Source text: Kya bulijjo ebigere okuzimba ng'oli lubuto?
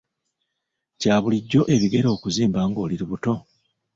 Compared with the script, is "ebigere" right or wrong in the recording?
right